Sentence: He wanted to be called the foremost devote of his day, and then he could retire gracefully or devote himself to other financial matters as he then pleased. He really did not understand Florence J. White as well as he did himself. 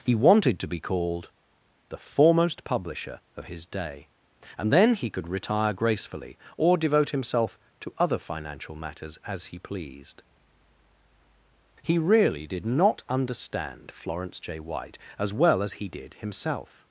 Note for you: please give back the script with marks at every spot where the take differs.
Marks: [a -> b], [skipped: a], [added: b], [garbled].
He wanted to be called the foremost [devote -> publisher] of his day, and then he could retire gracefully or devote himself to other financial matters as he [skipped: then] pleased. He really did not understand Florence J. White as well as he did himself.